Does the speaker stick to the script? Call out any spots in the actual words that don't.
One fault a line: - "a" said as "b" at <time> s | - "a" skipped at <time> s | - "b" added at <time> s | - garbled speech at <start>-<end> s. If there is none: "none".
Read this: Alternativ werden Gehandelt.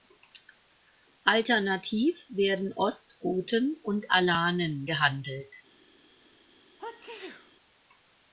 - "Ostgoten und Alanen" added at 2.7 s